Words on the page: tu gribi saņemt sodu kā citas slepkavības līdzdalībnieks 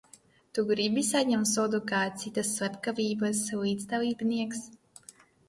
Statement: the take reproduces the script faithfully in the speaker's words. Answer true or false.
true